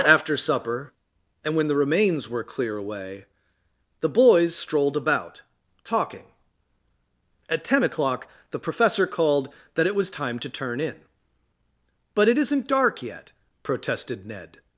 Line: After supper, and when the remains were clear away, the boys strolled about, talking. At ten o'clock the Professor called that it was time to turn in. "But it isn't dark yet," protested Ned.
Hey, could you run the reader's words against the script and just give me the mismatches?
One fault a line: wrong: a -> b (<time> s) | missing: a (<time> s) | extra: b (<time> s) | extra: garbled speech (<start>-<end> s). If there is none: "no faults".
no faults